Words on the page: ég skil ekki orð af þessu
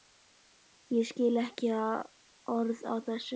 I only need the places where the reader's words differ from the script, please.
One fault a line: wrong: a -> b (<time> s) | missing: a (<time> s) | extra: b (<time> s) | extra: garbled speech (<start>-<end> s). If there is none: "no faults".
no faults